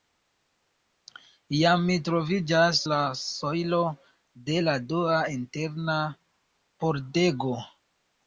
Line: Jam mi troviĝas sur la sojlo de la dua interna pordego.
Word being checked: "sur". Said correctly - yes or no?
no